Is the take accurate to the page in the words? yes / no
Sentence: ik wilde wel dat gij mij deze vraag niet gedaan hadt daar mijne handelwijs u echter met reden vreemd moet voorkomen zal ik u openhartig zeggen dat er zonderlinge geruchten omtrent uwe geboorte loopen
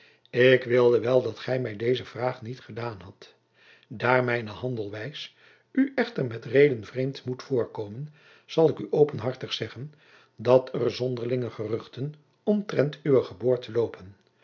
yes